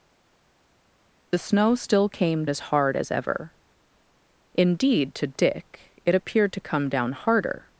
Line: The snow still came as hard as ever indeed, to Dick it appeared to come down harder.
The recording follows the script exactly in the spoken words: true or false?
true